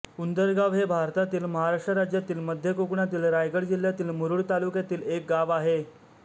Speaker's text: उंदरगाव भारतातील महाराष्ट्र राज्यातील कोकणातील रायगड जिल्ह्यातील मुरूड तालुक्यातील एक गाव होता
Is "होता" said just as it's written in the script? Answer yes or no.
no